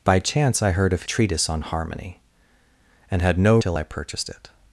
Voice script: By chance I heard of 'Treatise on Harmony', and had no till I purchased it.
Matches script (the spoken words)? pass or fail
pass